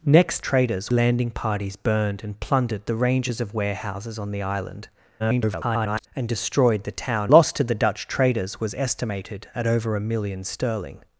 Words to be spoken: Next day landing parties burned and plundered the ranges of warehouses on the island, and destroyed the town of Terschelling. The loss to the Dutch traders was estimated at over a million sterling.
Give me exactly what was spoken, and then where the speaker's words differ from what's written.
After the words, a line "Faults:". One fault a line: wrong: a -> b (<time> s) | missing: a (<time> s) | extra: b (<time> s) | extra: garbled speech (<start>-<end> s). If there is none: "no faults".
Next traders landing parties burned and plundered the ranges of warehouses on the island, [garbled] and destroyed the town loss to the Dutch traders was estimated at over a million sterling.
Faults:
wrong: day -> traders (0.4 s)
extra: garbled speech (5.2-6.1 s)
missing: of Terschelling The (7.3 s)